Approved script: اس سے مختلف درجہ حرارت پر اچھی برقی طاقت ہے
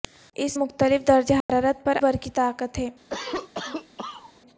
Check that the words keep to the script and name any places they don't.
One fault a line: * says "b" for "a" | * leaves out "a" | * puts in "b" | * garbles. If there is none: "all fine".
* leaves out "سے"
* leaves out "اچھی"